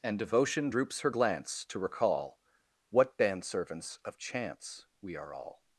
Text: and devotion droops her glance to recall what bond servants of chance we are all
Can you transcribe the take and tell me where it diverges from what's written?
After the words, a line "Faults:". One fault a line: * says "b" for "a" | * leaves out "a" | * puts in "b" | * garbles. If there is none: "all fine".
and devotion droops her glance to recall what band servants of chance we are all
Faults:
* says "band" for "bond"